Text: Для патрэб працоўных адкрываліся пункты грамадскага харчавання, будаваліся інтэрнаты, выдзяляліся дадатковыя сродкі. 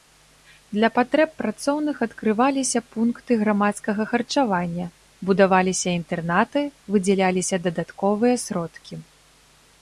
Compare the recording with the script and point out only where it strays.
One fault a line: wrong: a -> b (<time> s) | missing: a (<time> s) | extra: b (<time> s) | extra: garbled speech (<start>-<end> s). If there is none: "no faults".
no faults